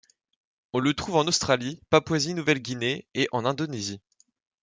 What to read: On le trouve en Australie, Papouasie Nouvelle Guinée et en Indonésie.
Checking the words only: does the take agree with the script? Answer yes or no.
yes